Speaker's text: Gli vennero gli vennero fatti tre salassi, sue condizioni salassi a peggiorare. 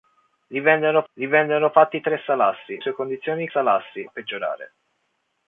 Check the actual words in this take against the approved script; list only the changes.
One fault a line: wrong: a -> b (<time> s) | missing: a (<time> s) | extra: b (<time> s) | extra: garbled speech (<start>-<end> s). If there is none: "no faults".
no faults